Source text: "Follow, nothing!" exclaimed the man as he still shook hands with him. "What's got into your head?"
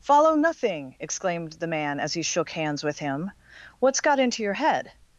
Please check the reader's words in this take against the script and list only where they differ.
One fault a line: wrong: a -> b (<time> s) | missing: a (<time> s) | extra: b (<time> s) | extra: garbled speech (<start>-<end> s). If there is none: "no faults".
missing: still (2.2 s)